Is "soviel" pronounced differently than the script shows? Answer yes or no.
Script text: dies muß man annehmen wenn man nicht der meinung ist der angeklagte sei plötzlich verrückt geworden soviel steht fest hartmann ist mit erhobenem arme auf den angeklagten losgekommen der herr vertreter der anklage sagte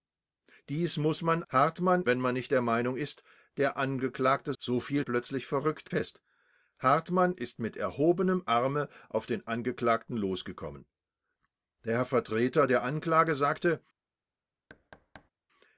yes